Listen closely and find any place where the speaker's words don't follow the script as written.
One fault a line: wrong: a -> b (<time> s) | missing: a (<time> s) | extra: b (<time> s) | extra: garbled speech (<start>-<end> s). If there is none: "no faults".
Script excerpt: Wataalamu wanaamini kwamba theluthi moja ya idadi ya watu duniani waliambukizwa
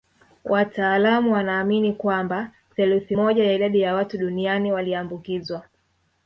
no faults